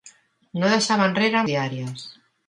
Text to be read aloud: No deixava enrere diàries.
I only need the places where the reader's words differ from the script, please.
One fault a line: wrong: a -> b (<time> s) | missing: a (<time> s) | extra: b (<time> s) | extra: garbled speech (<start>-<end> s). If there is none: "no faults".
no faults